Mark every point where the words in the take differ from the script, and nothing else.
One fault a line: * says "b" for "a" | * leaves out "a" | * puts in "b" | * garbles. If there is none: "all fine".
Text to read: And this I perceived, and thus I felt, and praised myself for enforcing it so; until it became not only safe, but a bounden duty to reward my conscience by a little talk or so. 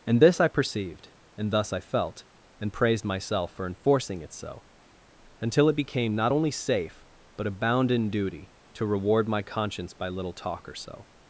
* leaves out "a"